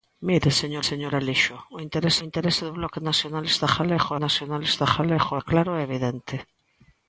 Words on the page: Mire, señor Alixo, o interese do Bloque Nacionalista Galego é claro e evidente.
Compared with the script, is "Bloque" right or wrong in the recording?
right